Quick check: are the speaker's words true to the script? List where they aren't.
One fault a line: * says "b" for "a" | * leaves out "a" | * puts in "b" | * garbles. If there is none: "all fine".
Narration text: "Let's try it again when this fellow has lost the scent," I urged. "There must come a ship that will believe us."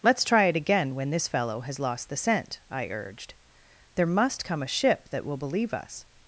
all fine